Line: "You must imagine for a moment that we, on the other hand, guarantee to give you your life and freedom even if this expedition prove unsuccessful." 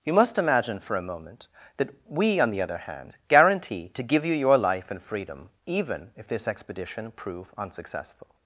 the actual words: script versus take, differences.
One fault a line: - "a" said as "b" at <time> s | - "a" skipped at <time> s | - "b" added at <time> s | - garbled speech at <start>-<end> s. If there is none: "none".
none